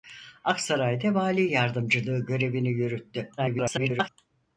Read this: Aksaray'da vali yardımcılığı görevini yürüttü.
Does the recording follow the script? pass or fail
fail